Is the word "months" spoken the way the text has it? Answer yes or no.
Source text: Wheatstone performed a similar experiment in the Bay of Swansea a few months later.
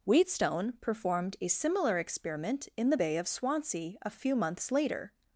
yes